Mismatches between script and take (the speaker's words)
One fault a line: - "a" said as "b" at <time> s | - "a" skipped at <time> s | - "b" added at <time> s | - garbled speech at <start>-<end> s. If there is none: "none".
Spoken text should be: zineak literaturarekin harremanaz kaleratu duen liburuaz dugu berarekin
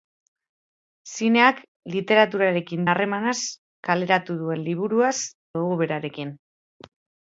none